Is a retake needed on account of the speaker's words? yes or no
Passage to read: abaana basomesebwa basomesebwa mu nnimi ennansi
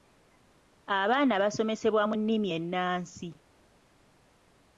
yes